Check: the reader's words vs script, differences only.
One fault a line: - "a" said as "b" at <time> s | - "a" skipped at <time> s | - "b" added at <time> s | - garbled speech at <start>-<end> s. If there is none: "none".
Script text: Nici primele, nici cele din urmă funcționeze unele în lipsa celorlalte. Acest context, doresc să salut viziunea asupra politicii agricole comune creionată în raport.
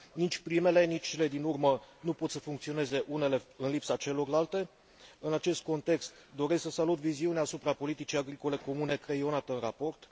- "nu pot să" added at 2.0 s
- "În" added at 5.2 s